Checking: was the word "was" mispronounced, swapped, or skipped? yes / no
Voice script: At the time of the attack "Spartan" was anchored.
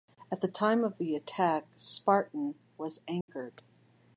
no